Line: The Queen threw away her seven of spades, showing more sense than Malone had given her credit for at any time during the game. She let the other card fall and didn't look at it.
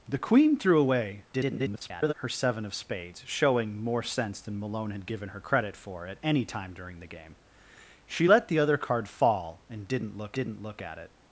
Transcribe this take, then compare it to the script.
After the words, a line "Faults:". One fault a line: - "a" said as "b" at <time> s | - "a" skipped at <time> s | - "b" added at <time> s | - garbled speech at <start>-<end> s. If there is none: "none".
The Queen threw away [garbled] her seven of spades, showing more sense than Malone had given her credit for at any time during the game. She let the other card fall and didn't look didn't look at it.
Faults:
- garbled speech at 1.3-2.1 s
- "didn't look" added at 10.3 s